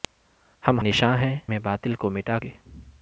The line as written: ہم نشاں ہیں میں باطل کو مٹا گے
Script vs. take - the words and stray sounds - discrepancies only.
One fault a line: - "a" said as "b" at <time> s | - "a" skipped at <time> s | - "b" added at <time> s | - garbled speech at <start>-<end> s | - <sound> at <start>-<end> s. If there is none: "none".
none